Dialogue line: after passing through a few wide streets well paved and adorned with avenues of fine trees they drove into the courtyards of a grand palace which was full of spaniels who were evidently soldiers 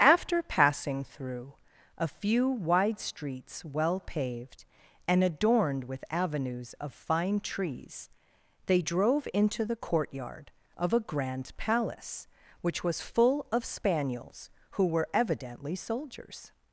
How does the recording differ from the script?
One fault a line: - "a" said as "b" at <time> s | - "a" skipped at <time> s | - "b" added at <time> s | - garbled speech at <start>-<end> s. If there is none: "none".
- "courtyards" said as "courtyard" at 9.7 s